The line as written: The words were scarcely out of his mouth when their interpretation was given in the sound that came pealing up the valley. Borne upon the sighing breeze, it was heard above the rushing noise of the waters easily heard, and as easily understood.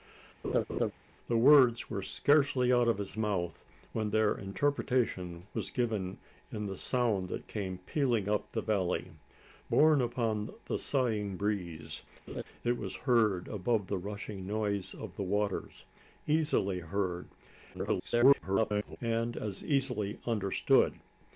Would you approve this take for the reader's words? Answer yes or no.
no